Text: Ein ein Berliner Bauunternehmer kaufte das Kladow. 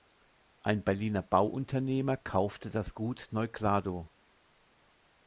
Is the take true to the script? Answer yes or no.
no